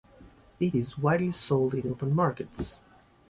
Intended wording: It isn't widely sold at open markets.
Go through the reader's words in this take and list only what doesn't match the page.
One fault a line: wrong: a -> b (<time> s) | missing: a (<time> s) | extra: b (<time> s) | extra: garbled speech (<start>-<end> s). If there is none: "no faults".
wrong: isn't -> is (0.7 s)
wrong: at -> in (1.7 s)